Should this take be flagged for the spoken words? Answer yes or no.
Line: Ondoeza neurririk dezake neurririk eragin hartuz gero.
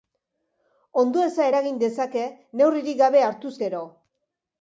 yes